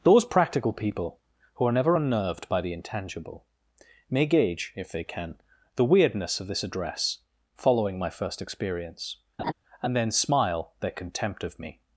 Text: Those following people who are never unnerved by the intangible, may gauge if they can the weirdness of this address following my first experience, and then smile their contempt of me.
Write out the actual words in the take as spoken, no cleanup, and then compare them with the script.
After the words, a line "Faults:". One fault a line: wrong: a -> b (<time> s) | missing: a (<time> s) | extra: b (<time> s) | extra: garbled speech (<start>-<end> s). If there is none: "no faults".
Those practical people who are never unnerved by the intangible, may gauge if they can the weirdness of this address following my first experience, and then smile their contempt of me.
Faults:
wrong: following -> practical (0.2 s)